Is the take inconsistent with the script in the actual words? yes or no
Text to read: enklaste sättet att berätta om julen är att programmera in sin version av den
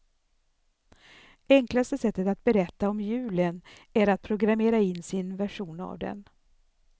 no